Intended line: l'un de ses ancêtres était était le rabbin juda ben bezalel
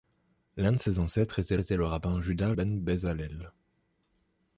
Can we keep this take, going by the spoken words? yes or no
yes